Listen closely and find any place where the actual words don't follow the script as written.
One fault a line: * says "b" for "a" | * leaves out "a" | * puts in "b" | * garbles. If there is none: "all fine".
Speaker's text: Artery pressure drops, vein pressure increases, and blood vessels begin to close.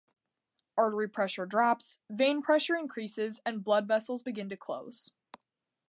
all fine